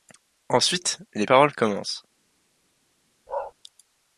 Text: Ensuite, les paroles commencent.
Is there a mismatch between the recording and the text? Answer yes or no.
no